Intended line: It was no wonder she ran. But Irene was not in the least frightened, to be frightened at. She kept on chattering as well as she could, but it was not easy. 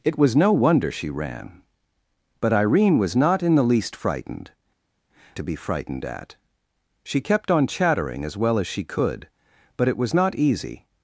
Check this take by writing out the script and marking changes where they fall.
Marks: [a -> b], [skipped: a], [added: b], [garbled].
It was no wonder she ran. But Irene was not in the least frightened, to be frightened at. She kept on chattering as well as she could, but it was not easy.